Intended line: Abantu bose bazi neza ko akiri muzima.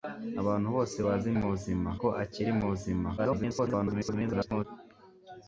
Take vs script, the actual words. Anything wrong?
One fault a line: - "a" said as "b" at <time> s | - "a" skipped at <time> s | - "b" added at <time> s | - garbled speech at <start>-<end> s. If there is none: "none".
- "neza" said as "muzima" at 1.4 s
- garbled speech at 3.2-4.6 s